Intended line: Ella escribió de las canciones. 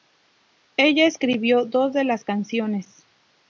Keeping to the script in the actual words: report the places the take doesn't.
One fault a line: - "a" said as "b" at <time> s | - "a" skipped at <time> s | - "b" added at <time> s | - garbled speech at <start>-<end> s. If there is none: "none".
- "dos" added at 1.6 s